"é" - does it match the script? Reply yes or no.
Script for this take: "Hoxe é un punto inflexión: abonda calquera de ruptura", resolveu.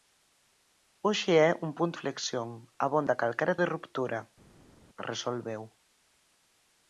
yes